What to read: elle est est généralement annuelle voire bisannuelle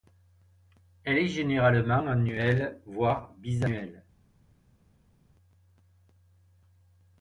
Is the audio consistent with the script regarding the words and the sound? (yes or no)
no